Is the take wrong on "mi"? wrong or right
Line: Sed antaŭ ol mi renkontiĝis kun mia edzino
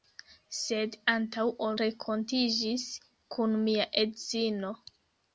wrong